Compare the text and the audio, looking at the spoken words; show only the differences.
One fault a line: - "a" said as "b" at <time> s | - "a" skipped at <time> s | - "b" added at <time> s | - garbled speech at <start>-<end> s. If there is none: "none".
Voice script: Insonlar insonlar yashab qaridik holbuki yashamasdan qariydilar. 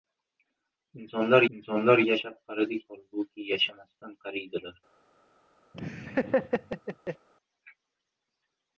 none